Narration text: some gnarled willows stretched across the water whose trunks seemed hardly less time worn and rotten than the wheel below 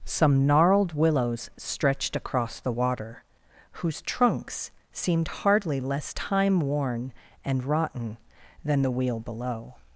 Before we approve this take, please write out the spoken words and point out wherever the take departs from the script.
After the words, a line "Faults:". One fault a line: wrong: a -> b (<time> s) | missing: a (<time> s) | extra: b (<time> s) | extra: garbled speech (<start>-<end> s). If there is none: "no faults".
some gnarled willows stretched across the water whose trunks seemed hardly less time worn and rotten than the wheel below
Faults:
no faults